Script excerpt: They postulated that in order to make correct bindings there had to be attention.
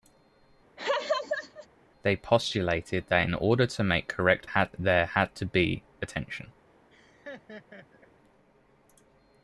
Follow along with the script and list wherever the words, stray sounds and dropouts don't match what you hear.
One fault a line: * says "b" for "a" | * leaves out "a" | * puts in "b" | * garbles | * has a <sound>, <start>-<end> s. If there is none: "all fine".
* has a laugh, 0.8-1.7 s
* says "had" for "bindings"
* has a laugh, 6.9-8.1 s